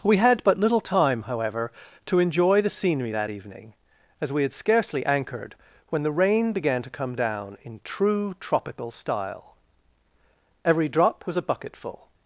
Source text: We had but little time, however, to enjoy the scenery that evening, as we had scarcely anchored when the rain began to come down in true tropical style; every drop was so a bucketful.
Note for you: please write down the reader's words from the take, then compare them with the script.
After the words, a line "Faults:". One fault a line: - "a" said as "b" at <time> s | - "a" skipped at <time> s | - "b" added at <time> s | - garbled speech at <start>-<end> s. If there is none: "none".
We had but little time, however, to enjoy the scenery that evening, as we had scarcely anchored when the rain began to come down in true tropical style; every drop was a bucketful.
Faults:
- "so" skipped at 11.3 s